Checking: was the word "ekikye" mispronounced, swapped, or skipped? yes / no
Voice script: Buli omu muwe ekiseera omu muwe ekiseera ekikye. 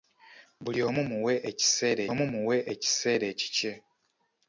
no